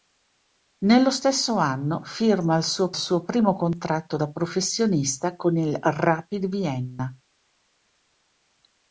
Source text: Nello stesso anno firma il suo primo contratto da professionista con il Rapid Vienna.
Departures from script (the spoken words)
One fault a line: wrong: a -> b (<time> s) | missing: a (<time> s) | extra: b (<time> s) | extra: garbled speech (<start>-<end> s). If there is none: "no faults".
extra: suo (2.9 s)